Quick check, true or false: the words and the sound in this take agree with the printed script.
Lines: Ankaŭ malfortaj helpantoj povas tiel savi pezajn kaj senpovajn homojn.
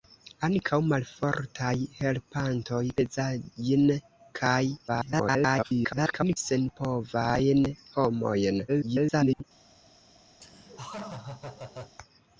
false